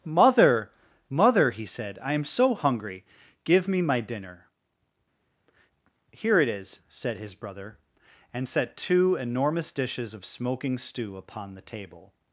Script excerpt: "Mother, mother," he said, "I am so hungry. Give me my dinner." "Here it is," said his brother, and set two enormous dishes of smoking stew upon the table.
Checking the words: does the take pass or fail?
pass